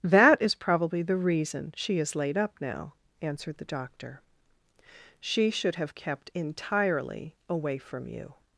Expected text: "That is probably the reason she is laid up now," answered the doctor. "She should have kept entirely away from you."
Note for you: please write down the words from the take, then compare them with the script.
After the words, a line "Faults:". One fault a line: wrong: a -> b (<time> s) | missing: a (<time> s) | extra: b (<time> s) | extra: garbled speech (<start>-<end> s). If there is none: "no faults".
"That is probably the reason she is laid up now," answered the doctor. "She should have kept entirely away from you."
Faults:
no faults